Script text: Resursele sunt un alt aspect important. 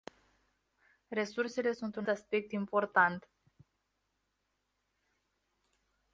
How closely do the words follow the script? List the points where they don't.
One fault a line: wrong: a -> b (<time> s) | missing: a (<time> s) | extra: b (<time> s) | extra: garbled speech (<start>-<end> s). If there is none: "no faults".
missing: alt (2.1 s)